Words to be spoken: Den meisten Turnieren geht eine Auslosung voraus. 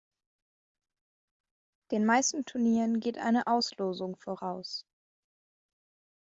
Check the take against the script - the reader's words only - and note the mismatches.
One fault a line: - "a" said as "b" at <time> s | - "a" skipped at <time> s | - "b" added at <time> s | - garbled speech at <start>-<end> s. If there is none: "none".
none